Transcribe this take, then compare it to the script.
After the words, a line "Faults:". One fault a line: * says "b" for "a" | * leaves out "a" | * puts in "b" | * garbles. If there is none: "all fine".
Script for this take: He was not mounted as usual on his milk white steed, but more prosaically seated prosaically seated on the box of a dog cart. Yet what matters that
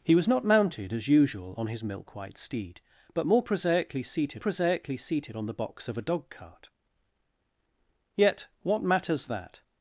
He was not mounted as usual on his milk white steed, but more prosaically seated prosaically seated on the box of a dog cart. Yet what matters that
Faults:
all fine